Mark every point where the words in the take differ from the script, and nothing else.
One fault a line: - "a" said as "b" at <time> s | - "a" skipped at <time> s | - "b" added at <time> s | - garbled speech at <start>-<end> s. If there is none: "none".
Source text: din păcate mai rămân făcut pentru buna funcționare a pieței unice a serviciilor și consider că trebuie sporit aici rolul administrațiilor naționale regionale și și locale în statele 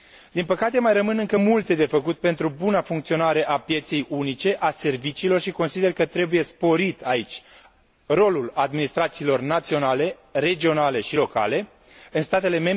- "încă multe de" added at 1.2 s
- "și" skipped at 11.2 s